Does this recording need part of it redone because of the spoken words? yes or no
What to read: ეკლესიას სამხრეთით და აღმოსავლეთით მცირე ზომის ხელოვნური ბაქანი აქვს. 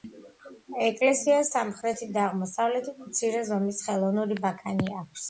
no